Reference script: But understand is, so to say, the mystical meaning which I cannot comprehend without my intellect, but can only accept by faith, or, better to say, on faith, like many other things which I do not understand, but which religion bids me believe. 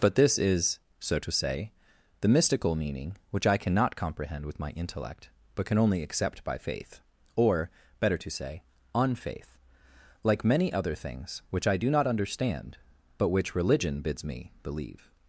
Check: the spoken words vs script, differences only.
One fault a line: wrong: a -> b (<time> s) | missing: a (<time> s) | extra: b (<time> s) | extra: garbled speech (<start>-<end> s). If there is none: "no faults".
wrong: understand -> this (0.1 s)
wrong: without -> with (4.5 s)